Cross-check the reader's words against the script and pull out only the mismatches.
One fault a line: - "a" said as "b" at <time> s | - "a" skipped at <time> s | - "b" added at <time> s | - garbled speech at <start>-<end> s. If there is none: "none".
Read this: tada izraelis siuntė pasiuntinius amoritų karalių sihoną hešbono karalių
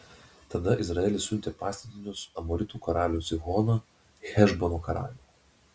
none